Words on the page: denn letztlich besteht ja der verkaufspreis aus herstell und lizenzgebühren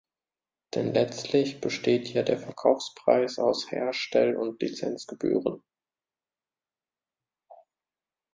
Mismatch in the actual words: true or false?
false